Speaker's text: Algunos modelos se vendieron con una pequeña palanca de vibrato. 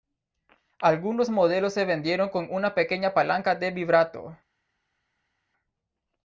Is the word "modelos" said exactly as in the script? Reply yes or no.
yes